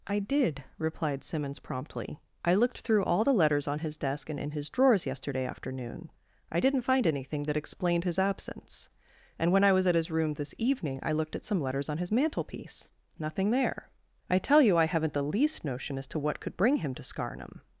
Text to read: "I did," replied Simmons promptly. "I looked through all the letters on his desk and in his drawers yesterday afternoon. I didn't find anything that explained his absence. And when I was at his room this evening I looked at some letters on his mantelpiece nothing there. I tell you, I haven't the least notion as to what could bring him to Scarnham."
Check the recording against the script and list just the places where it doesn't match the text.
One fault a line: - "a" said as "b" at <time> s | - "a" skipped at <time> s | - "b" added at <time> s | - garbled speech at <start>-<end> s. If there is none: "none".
none